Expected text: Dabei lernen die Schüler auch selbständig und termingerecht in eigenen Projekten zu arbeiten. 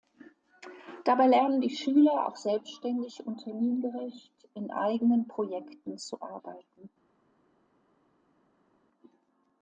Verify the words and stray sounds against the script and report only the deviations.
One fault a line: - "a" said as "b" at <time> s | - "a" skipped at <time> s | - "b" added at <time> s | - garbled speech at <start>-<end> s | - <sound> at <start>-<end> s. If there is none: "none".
none